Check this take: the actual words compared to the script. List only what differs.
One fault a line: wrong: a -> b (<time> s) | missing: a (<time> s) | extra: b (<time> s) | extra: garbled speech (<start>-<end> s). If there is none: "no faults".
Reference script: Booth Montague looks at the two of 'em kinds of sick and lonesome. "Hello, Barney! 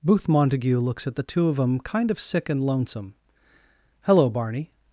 wrong: kinds -> kind (1.8 s)